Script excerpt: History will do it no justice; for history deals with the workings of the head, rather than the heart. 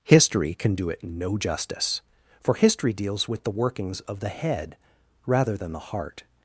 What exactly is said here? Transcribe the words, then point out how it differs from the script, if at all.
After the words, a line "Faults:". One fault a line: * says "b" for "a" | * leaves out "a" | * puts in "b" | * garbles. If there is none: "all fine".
History can do it no justice; for history deals with the workings of the head, rather than the heart.
Faults:
* says "can" for "will"